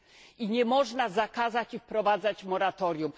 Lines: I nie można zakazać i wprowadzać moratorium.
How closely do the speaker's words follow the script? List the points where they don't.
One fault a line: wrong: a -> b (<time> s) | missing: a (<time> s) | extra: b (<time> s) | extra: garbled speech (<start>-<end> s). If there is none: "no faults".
no faults